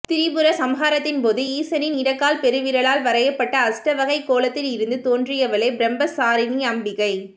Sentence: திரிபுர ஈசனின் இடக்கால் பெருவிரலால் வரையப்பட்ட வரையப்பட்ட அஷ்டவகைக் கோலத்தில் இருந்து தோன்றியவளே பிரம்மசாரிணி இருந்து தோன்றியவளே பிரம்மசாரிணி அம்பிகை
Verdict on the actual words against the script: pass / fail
fail